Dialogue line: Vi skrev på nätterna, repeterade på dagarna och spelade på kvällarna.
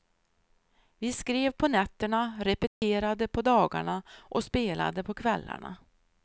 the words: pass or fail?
pass